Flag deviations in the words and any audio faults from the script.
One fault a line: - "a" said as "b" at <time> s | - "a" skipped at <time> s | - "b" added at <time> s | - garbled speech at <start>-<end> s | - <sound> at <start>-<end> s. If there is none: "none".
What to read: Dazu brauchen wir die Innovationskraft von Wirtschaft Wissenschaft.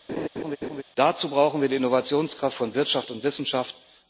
- laugh at 0.1-0.8 s
- "und" added at 3.1 s